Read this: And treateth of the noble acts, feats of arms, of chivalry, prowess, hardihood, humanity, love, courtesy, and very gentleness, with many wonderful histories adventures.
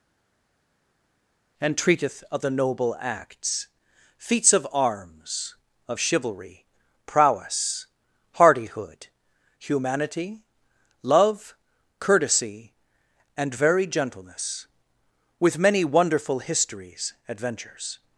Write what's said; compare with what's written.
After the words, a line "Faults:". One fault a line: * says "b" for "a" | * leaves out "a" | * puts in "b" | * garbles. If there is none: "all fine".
And treateth of the noble acts, feats of arms, of chivalry, prowess, hardihood, humanity, love, courtesy, and very gentleness, with many wonderful histories adventures.
Faults:
all fine